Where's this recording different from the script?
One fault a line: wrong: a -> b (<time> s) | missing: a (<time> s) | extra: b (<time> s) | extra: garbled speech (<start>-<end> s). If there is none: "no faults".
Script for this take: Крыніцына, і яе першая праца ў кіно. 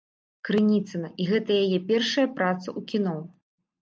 extra: гэта (1.3 s)